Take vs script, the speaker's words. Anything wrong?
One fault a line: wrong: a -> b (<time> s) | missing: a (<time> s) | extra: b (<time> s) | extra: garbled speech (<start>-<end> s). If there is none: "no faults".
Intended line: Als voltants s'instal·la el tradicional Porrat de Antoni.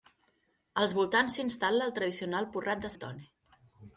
no faults